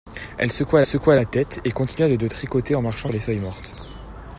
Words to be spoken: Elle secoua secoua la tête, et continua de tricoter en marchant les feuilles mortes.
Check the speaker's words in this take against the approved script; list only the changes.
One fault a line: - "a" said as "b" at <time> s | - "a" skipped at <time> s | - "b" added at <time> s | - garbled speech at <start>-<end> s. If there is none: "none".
none